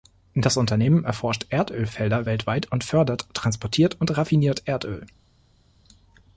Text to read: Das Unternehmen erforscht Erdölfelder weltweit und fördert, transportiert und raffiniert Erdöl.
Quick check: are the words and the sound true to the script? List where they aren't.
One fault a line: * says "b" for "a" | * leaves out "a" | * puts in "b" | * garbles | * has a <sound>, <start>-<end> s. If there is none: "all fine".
all fine